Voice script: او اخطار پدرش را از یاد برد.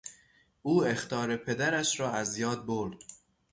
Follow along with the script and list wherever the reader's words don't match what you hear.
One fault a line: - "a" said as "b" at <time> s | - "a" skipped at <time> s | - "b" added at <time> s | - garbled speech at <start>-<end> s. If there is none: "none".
none